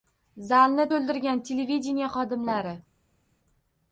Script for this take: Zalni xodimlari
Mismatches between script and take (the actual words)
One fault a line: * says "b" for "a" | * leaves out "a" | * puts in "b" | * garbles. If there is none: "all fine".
* puts in "to‘ldirgan televideniye"